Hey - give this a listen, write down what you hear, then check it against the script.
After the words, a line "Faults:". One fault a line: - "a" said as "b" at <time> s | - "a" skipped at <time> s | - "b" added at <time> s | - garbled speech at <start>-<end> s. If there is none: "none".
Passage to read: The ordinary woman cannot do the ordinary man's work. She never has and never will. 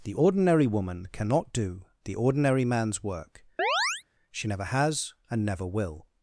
The ordinary woman cannot do the ordinary man's work. She never has and never will.
Faults:
none